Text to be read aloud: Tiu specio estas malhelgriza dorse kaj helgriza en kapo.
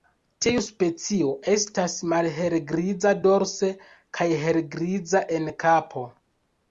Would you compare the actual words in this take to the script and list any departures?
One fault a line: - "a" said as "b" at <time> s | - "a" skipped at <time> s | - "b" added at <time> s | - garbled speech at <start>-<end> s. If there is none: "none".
none